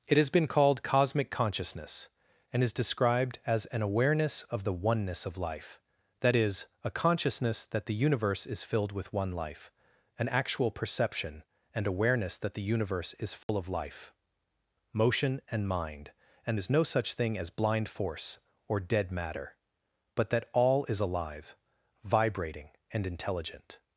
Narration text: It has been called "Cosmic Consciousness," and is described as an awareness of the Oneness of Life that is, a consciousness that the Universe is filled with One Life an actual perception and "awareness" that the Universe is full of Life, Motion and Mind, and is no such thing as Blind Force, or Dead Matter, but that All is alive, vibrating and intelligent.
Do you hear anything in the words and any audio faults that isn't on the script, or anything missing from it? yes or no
yes